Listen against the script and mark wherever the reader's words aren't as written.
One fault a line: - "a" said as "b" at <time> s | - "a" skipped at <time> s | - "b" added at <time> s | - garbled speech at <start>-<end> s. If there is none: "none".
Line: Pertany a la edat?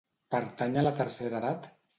- "tercera" added at 1.0 s